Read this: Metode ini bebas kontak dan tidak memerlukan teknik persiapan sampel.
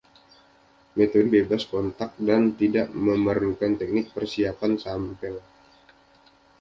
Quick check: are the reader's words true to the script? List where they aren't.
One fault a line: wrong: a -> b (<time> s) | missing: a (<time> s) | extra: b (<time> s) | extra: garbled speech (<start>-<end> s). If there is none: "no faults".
missing: ini (1.3 s)